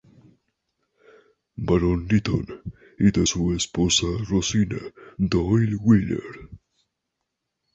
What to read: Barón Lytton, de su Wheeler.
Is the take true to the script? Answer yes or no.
no